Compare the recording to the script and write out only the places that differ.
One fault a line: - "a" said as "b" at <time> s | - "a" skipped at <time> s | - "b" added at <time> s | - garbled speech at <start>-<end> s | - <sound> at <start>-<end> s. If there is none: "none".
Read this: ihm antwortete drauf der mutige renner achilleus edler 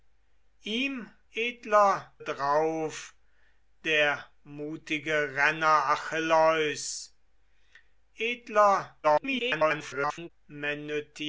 - "antwortete" said as "edler" at 1.3 s
- garbled speech at 9.0-10.3 s